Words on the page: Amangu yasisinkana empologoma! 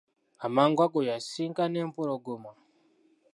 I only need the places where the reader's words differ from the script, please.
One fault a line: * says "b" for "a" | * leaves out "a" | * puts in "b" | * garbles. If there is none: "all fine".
* puts in "ago"